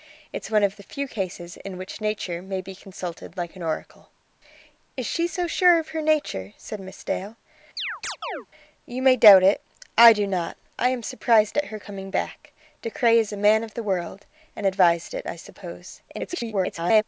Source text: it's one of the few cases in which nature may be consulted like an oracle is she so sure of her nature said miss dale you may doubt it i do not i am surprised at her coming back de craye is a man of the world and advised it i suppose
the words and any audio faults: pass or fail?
fail